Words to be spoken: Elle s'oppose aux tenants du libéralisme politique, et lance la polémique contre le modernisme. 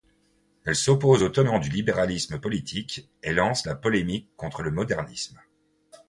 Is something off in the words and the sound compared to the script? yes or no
no